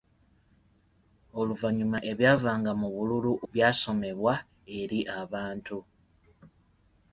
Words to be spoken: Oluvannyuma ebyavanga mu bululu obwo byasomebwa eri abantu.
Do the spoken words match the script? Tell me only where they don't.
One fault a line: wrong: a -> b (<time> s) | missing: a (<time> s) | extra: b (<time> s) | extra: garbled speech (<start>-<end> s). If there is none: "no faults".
missing: obwo (3.3 s)